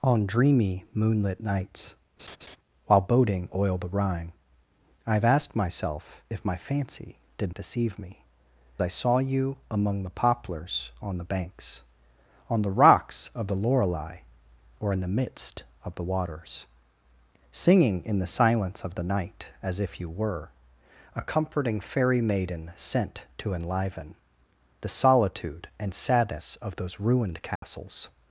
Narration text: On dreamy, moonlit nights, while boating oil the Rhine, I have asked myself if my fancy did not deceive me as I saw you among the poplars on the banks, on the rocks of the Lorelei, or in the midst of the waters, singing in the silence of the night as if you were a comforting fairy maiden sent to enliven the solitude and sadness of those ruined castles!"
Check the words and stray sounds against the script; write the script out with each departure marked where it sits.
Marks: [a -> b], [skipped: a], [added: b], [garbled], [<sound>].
On dreamy, moonlit nights, [laugh] while boating oil the Rhine, I have asked myself if my fancy did [skipped: not] deceive me [skipped: as] I saw you among the poplars on the banks, on the rocks of the Lorelei, or in the midst of the waters, singing in the silence of the night as if you were a comforting fairy maiden sent to enliven the solitude and sadness of those ruined castles!" [dropout]